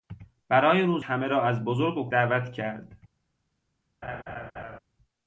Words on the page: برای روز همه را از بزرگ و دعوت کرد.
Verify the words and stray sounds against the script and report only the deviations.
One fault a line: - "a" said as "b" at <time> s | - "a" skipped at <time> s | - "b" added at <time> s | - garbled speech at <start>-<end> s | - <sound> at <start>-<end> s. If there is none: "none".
- laugh at 4.0-4.8 s